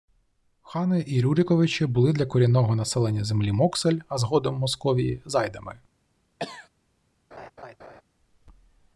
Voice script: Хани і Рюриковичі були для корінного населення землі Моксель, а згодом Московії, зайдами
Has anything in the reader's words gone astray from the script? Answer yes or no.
no